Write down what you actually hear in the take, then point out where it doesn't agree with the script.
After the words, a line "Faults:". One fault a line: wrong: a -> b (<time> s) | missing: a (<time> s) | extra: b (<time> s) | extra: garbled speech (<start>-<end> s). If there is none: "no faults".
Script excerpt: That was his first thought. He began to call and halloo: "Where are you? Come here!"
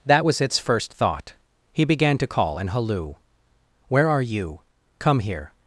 That was its first thought. He began to call and halloo: "Where are you? Come here!"
Faults:
wrong: his -> its (0.4 s)